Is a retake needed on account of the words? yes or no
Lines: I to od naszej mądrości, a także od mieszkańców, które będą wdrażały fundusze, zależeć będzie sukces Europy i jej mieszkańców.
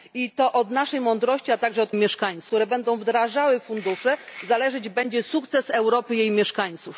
no